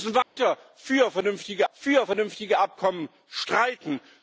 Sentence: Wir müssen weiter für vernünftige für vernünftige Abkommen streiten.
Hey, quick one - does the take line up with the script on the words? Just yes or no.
yes